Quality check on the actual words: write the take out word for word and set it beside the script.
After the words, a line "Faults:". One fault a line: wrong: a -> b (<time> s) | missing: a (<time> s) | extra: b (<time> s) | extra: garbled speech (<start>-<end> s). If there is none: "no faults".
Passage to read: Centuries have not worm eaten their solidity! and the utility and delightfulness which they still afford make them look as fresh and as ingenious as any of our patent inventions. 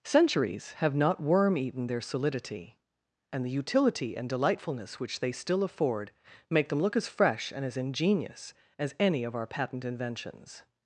Centuries have not worm eaten their solidity! and the utility and delightfulness which they still afford make them look as fresh and as ingenious as any of our patent inventions.
Faults:
no faults